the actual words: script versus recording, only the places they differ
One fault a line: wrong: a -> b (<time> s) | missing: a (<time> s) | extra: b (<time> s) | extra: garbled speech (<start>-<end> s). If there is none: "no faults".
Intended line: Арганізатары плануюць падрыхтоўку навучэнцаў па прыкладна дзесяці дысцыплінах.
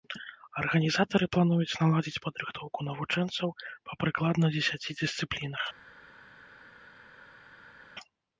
extra: наладзіць (1.8 s)